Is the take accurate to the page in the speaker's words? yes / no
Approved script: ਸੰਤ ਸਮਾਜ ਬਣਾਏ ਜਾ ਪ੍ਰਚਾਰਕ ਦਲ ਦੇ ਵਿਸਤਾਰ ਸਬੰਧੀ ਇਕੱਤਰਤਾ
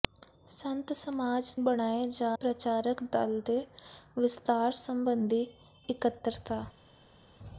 yes